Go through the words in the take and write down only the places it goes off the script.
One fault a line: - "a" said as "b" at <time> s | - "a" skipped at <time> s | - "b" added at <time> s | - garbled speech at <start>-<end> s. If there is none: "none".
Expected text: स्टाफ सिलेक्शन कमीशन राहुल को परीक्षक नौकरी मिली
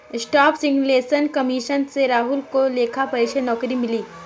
- "से" added at 1.9 s
- "लेखा" added at 2.7 s